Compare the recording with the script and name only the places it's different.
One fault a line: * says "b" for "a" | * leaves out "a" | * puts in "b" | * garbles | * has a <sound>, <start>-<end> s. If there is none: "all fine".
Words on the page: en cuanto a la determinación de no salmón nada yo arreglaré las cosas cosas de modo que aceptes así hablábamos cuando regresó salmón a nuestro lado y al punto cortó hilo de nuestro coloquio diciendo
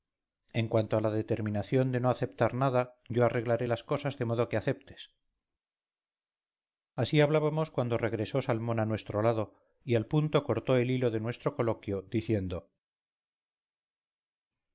* says "aceptar" for "salmón"
* leaves out "cosas"
* puts in "el"